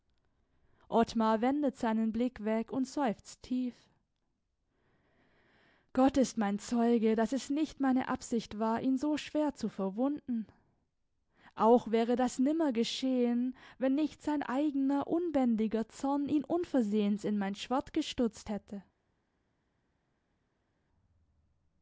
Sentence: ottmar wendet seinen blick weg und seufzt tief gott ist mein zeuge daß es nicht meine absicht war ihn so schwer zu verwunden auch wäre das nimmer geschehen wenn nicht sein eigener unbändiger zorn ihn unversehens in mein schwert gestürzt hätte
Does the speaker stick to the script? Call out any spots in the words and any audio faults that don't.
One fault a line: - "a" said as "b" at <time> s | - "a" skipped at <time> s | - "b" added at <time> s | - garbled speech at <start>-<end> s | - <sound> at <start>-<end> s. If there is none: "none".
none